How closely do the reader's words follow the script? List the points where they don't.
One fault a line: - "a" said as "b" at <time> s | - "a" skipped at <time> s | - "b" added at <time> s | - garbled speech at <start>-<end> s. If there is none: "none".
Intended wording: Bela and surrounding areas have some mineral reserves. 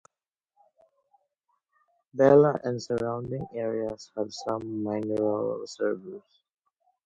none